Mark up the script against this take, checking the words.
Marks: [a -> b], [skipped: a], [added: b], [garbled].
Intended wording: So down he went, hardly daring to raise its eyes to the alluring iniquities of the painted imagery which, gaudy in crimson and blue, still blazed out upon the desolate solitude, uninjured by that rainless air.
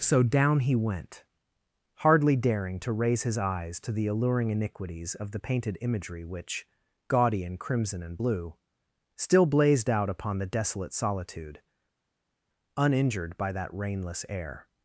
So down he went, hardly daring to raise [its -> his] eyes to the alluring iniquities of the painted imagery which, gaudy in crimson and blue, still blazed out upon the desolate solitude, uninjured by that rainless air.